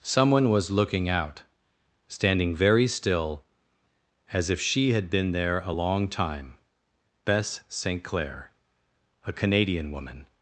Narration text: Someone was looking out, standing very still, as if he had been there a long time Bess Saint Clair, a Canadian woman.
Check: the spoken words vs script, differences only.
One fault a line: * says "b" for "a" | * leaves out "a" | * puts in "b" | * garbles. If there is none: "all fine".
* says "she" for "he"